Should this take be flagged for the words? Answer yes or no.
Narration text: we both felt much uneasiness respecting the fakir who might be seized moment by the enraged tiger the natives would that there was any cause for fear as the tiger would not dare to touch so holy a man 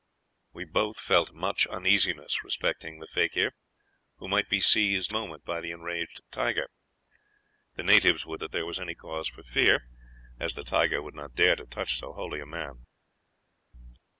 no